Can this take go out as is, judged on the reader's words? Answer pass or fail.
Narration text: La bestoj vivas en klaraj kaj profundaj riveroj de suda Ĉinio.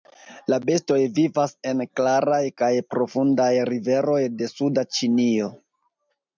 pass